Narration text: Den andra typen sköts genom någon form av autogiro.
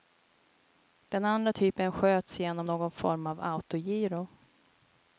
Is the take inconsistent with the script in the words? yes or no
no